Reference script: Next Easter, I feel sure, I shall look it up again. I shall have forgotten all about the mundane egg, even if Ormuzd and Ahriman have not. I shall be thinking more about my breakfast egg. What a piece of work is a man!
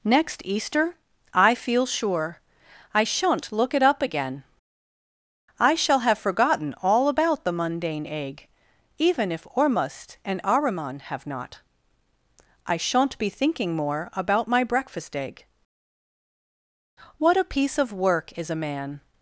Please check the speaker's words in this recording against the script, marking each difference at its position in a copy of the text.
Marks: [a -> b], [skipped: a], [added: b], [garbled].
Next Easter, I feel sure, I [shall -> shan't] look it up again. I shall have forgotten all about the mundane egg, even if Ormuzd and Ahriman have not. I [shall -> shan't] be thinking more about my breakfast egg. What a piece of work is a man!